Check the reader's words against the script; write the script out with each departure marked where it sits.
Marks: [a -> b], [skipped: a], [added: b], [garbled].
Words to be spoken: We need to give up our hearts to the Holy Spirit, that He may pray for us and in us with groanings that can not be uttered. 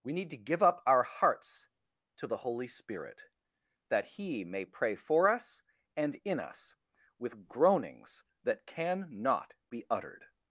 We need to give up our hearts to the Holy Spirit, that He may pray for us and in us with groanings that can not be uttered.